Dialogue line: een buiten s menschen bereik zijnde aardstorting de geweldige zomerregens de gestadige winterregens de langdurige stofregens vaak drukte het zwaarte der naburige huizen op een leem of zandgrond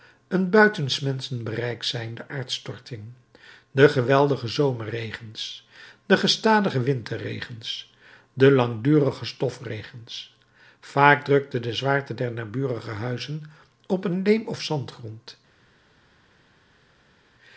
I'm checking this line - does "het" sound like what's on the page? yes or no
no